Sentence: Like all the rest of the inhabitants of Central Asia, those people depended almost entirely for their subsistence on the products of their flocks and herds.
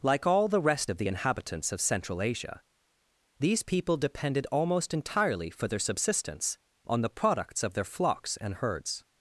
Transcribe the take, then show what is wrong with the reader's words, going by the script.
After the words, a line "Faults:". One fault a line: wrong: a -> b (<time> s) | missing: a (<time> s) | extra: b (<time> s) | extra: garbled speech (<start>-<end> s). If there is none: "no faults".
Like all the rest of the inhabitants of Central Asia, these people depended almost entirely for their subsistence on the products of their flocks and herds.
Faults:
wrong: those -> these (3.4 s)